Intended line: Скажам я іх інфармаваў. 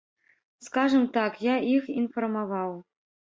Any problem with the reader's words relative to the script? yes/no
yes